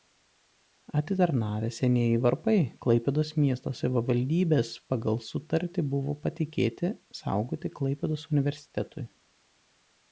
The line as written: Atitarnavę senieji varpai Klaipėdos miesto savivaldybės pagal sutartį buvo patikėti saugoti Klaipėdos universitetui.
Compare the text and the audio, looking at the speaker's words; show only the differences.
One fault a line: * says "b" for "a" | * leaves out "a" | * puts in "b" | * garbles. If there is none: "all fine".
all fine